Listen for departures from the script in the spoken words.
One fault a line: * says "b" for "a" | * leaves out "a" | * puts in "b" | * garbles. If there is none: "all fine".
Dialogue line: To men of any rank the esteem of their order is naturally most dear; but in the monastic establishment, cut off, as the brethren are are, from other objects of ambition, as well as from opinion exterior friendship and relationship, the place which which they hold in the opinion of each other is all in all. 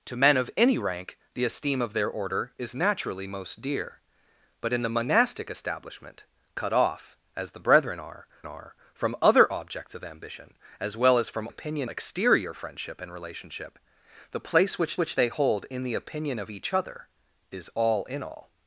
all fine